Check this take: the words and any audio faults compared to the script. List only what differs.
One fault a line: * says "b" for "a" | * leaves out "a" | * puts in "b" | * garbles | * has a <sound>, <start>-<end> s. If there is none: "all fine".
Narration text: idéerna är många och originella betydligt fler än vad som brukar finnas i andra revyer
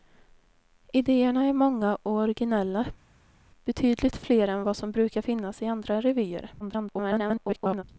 * garbles